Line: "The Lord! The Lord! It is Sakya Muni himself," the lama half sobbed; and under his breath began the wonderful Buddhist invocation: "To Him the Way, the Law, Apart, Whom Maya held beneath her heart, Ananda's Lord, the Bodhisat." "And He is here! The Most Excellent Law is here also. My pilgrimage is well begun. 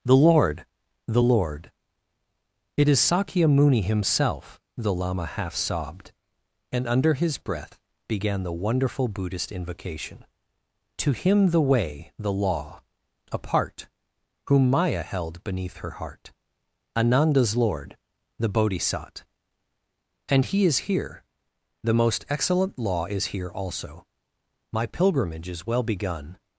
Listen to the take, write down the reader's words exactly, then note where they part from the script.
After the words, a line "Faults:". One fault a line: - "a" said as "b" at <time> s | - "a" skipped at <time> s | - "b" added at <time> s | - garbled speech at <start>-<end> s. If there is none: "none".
"The Lord! The Lord! It is Sakya Muni himself," the lama half sobbed; and under his breath began the wonderful Buddhist invocation: "To Him the Way, the Law, Apart, Whom Maya held beneath her heart, Ananda's Lord, the Bodhisat." "And He is here! The Most Excellent Law is here also. My pilgrimage is well begun.
Faults:
none